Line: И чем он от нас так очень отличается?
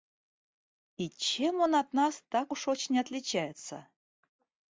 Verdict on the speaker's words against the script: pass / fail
fail